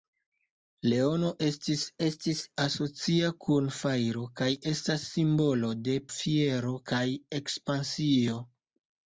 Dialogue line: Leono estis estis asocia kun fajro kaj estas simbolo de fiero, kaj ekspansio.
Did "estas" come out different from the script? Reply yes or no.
no